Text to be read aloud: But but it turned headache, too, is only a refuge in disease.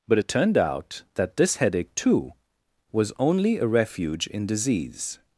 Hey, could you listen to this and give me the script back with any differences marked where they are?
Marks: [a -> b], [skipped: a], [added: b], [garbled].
But [skipped: but] it turned [added: out that this] headache, too, [is -> was] only a refuge in disease.